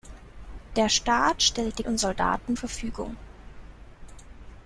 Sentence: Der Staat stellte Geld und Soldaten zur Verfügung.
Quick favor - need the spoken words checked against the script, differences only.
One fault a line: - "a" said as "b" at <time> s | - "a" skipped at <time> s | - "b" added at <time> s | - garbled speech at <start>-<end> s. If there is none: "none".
- "Geld" skipped at 1.8 s
- "zur" skipped at 2.6 s